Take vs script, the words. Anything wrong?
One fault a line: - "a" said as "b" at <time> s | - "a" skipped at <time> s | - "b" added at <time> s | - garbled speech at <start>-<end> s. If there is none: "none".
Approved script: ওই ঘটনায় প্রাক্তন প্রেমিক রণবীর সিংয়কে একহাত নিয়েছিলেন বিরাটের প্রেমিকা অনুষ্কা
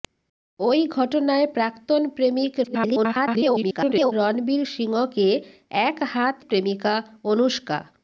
- garbled speech at 2.6-4.1 s
- "নিয়েছিলেন বিরাটের" skipped at 6.4 s